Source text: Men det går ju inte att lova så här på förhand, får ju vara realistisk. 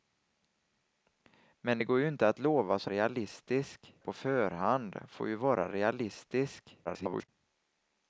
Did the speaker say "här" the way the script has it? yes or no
no